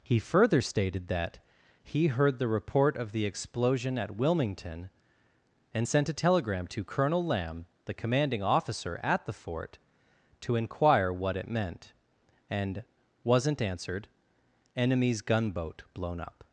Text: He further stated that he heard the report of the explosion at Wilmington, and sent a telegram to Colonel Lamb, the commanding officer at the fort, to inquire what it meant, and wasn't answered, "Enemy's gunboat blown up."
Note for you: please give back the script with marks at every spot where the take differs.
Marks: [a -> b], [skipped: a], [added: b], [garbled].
He further stated that he heard the report of the explosion at Wilmington, and sent a telegram to Colonel Lamb, the commanding officer at the fort, to inquire what it meant, and wasn't answered, "Enemy's gunboat blown up."